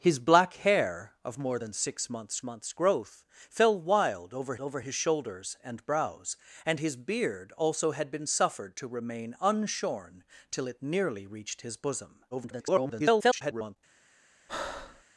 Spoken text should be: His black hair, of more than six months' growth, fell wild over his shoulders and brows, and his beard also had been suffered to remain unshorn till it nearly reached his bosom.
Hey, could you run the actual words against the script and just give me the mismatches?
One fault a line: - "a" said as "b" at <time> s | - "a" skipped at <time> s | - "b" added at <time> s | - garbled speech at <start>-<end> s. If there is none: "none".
- "months" added at 2.4 s
- "over" added at 4.6 s
- garbled speech at 12.3-13.8 s